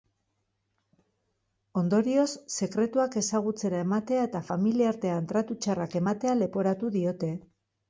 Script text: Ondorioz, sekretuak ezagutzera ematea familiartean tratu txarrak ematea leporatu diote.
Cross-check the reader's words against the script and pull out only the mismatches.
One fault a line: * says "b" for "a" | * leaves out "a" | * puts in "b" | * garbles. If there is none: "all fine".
* puts in "eta"